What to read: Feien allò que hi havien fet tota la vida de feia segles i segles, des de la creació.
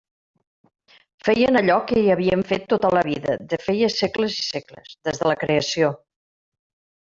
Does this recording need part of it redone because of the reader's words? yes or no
no